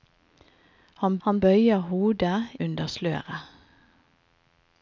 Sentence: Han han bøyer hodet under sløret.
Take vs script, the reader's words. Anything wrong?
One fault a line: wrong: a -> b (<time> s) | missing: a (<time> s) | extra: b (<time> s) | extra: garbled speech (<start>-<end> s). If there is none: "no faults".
no faults